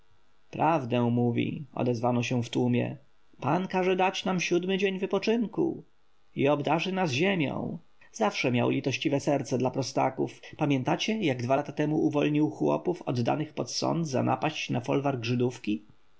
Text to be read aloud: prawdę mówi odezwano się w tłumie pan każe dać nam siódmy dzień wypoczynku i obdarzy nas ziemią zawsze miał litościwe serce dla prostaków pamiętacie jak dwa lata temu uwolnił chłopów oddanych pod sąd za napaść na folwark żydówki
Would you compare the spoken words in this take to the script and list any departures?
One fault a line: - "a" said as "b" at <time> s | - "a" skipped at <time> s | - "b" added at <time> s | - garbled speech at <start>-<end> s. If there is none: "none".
none